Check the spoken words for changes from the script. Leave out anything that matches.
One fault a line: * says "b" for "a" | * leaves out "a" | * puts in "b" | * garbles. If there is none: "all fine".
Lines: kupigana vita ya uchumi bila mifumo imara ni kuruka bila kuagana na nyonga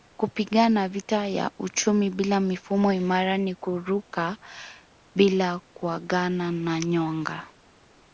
all fine